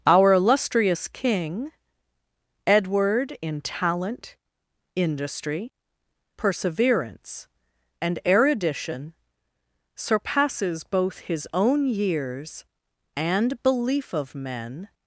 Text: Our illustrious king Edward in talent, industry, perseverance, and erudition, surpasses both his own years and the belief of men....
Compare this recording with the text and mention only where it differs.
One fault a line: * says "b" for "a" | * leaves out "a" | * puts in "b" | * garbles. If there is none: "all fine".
* leaves out "the"